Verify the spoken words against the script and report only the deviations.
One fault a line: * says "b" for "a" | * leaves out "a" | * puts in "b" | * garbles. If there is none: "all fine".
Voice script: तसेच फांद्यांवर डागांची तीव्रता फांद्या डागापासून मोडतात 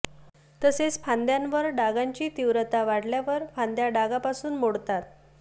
* puts in "वाढल्यावर"